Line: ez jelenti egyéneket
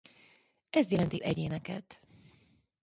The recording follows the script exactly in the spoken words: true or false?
true